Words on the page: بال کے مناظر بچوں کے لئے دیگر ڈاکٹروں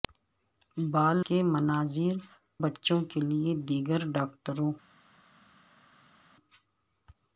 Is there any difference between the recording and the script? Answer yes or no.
no